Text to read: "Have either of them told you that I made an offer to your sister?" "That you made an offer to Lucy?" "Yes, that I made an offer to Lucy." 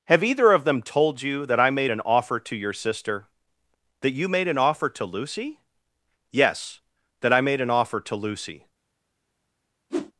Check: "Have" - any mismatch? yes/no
no